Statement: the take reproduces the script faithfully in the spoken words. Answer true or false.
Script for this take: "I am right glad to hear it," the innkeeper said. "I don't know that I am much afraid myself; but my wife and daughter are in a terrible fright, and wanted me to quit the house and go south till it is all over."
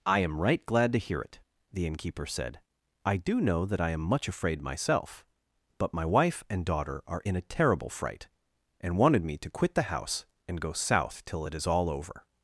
false